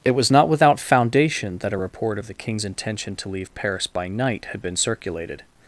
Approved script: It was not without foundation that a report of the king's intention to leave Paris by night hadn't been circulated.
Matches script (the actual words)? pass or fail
fail